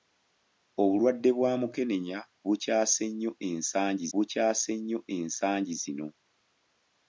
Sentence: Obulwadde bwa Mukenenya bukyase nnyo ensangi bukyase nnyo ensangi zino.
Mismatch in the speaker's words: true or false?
false